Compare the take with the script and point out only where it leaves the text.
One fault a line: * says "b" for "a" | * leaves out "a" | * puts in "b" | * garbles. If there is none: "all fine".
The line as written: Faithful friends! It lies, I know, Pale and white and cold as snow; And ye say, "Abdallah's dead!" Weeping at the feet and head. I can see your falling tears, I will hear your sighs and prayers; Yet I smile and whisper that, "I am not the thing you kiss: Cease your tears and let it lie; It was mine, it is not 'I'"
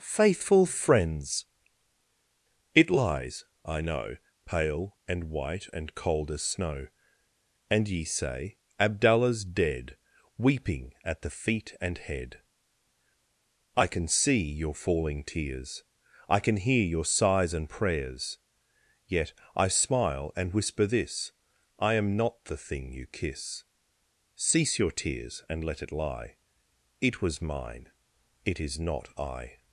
* says "can" for "will"
* says "this" for "that"